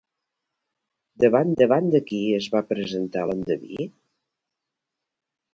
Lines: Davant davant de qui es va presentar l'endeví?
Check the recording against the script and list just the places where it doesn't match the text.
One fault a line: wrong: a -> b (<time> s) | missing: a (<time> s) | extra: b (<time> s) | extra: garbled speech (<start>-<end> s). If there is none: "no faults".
no faults